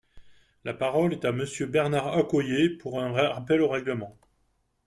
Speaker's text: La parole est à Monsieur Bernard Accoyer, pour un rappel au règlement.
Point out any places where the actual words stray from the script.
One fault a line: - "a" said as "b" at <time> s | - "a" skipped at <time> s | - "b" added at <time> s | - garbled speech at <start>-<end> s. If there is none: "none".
none